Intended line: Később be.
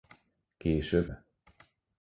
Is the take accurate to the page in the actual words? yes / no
yes